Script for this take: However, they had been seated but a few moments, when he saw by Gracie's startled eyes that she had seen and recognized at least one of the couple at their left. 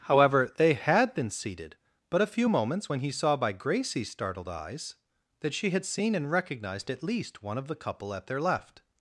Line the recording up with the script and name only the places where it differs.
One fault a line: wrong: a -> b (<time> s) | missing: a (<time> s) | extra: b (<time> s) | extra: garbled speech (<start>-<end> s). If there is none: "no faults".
no faults